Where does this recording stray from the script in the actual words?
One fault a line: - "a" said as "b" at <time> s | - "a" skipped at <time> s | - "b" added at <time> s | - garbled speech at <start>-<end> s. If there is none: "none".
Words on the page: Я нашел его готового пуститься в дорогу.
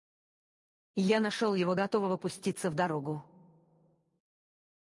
none